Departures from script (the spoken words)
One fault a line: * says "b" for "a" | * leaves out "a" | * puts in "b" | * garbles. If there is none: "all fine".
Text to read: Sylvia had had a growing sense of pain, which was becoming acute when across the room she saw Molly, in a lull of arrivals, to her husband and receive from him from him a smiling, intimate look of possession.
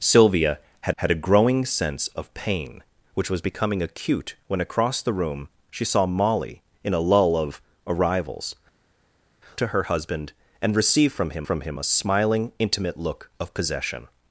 all fine